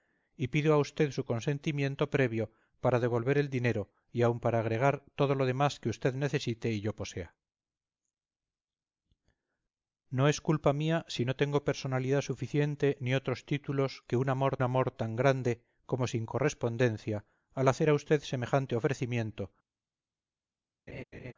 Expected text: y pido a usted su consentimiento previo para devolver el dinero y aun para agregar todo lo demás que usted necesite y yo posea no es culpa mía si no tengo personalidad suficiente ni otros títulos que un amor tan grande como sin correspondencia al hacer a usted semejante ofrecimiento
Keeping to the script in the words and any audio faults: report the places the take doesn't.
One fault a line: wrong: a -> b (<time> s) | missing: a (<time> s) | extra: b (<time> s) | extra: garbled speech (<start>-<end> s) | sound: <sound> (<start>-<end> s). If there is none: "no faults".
extra: amor (14.6 s)
sound: laugh (20.9-21.3 s)